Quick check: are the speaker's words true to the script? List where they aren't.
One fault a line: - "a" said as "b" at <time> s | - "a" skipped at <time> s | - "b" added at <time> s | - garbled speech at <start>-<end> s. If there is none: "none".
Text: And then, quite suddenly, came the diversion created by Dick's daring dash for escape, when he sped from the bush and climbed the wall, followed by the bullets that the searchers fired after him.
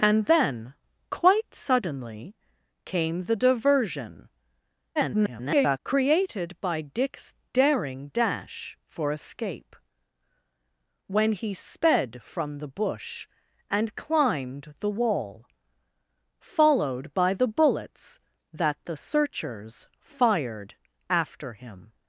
- garbled speech at 5.0-5.8 s